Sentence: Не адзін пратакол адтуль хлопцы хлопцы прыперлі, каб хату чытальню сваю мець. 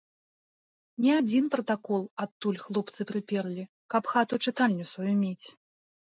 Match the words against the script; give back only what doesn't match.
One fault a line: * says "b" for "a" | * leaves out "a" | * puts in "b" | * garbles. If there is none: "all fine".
* leaves out "хлопцы"